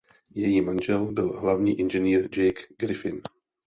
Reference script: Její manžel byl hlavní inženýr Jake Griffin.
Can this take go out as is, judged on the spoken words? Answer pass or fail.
pass